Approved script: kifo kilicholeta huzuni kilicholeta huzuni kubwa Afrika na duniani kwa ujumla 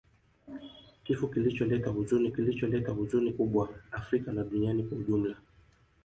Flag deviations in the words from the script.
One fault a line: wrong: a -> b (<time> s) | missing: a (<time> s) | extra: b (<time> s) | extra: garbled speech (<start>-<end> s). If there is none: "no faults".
no faults